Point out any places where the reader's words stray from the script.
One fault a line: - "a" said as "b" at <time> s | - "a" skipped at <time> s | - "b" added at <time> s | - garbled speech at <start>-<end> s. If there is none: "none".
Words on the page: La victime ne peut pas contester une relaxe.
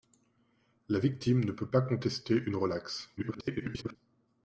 - garbled speech at 3.2-4.0 s